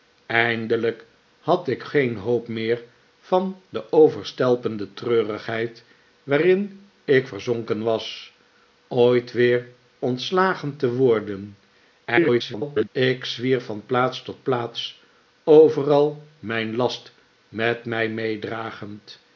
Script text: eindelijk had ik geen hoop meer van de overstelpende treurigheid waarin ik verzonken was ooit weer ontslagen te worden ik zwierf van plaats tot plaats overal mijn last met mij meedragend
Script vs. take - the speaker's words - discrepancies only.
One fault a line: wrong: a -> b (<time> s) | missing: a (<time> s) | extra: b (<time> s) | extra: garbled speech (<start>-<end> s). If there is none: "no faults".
extra: garbled speech (12.0-12.9 s)